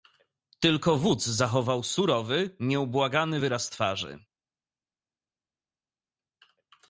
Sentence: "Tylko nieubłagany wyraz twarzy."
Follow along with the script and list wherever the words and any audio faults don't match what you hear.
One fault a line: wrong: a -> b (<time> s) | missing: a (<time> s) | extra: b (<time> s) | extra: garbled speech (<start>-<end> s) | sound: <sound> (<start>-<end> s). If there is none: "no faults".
extra: wódz zachował surowy (1.0 s)